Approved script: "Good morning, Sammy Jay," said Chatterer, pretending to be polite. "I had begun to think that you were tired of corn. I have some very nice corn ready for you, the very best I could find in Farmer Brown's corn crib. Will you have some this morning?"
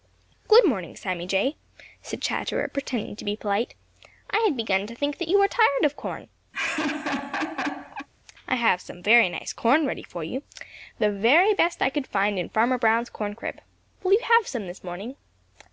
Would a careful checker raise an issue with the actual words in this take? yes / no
no